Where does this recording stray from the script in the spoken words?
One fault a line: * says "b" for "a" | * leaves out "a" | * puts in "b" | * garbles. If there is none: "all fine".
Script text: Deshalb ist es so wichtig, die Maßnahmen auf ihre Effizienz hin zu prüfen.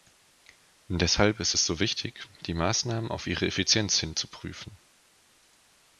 all fine